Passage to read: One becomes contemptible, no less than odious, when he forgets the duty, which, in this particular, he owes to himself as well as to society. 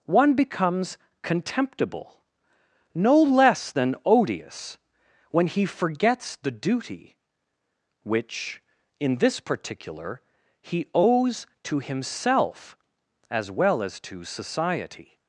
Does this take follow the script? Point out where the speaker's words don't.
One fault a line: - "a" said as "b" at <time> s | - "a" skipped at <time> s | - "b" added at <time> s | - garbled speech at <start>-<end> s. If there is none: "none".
none